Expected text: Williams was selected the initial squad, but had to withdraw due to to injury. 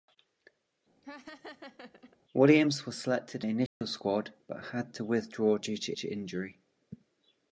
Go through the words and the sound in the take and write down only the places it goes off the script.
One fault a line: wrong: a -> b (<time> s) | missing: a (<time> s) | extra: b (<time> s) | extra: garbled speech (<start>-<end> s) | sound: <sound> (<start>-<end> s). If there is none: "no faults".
sound: laugh (1.0-2.2 s)
sound: dropout (3.7-3.8 s)